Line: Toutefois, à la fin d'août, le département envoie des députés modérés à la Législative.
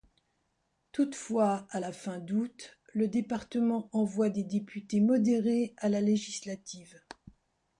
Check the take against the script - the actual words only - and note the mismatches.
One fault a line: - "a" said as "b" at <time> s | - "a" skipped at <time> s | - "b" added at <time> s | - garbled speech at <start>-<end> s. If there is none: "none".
none